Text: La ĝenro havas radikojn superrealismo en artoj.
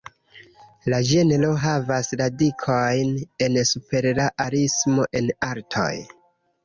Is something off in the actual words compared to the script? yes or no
yes